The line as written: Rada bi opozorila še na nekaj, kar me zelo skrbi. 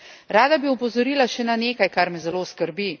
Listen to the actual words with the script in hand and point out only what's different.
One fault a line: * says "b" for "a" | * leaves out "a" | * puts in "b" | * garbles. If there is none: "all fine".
all fine